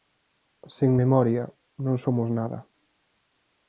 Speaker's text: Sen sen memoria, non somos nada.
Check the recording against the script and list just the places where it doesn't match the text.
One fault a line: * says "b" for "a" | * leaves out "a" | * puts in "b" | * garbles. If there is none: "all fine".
* leaves out "sen"